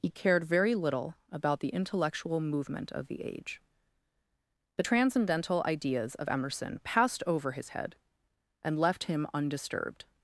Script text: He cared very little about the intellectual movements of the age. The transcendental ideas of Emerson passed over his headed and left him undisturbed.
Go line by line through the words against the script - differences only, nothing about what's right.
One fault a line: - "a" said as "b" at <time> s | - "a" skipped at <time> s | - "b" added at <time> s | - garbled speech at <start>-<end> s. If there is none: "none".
- "movements" said as "movement" at 2.4 s
- "headed" said as "head" at 7.7 s